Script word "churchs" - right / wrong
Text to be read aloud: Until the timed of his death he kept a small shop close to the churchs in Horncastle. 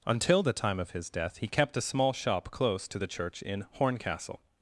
wrong